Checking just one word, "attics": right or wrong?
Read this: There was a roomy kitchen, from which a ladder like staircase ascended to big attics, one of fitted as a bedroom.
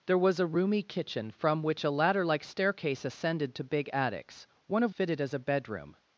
right